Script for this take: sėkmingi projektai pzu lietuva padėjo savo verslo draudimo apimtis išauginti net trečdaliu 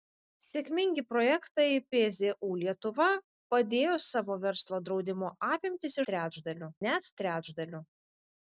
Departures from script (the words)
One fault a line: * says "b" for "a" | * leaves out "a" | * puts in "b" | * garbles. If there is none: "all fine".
* says "trečdaliu" for "išauginti"